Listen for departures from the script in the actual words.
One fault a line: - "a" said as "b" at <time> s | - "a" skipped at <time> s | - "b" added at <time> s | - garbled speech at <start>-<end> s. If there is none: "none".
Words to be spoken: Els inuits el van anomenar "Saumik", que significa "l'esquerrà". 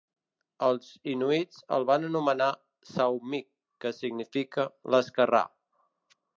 none